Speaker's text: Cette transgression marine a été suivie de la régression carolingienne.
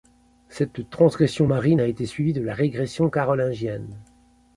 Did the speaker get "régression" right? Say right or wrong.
right